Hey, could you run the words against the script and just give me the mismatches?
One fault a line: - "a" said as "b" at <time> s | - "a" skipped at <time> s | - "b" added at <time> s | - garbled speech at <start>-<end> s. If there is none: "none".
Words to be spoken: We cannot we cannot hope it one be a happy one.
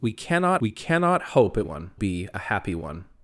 none